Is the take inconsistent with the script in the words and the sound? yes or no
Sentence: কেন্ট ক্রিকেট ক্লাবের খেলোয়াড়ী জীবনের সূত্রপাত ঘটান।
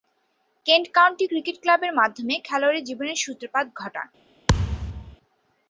yes